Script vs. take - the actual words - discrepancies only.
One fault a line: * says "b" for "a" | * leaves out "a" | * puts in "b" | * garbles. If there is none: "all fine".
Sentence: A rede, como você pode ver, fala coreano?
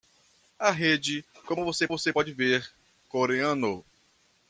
* puts in "você"
* leaves out "fala"